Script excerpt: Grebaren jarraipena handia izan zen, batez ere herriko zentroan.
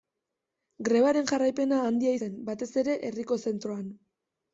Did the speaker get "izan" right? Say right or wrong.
wrong